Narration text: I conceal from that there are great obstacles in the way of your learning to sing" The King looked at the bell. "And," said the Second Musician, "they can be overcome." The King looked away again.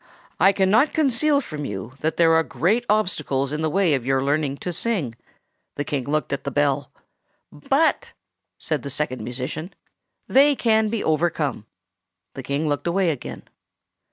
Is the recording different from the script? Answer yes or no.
yes